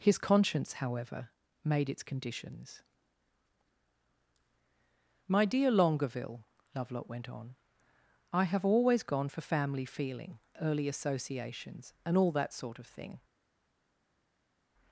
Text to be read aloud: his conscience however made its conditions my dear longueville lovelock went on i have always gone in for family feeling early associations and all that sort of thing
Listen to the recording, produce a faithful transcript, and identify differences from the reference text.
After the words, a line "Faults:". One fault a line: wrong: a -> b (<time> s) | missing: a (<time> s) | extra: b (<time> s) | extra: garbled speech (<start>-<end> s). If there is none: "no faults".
his conscience however made its conditions my dear longueville lovelock went on i have always gone for family feeling early associations and all that sort of thing
Faults:
missing: in (9.3 s)